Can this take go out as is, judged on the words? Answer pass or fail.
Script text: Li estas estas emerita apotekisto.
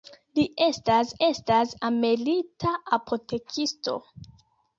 pass